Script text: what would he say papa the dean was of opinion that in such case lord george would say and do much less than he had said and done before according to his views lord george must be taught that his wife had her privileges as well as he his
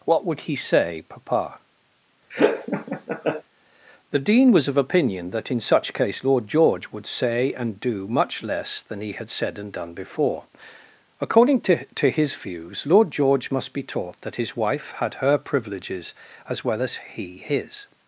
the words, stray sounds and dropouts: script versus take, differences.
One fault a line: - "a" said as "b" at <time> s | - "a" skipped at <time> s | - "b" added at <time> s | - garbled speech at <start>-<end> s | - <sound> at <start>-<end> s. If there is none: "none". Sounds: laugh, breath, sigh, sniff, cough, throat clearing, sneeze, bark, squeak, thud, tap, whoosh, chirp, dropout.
- laugh at 2.3-3.4 s
- "to" added at 11.9 s